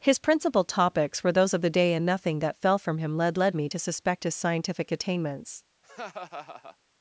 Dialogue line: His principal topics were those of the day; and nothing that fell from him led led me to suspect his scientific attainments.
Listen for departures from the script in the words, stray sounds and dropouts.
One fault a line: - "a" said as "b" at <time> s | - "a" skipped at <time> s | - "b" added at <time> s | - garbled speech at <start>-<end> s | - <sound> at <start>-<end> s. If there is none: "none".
- laugh at 5.8-6.8 s